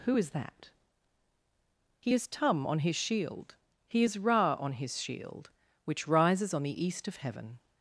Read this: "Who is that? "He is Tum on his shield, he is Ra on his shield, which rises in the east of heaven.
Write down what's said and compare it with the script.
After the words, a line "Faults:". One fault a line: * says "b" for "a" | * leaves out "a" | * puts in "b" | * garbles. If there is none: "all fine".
"Who is that? "He is Tum on his shield, he is Ra on his shield, which rises on the east of heaven.
Faults:
* says "on" for "in"